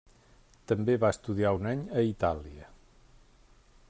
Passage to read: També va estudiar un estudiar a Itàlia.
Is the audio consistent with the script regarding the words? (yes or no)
no